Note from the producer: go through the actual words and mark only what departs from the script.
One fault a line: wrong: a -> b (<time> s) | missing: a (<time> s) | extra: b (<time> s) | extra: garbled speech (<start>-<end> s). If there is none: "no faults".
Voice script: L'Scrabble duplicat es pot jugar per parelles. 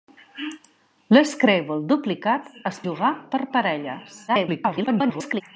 missing: pot (2.8 s)
extra: garbled speech (4.3-5.4 s)